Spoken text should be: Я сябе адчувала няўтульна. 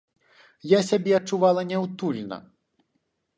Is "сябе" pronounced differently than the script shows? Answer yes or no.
no